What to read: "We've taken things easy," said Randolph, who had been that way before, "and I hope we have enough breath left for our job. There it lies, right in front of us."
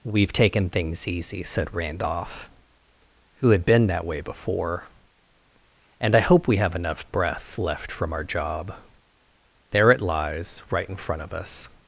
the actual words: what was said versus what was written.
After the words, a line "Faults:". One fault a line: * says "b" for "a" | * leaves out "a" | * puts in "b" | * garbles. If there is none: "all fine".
"We've taken things easy," said Randolph, who had been that way before, "and I hope we have enough breath left from our job. There it lies, right in front of us."
Faults:
* says "from" for "for"